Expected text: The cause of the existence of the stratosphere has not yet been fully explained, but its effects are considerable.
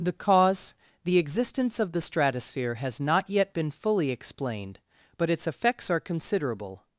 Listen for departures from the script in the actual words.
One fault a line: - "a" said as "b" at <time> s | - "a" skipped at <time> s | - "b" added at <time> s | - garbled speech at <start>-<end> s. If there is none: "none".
- "of" skipped at 0.7 s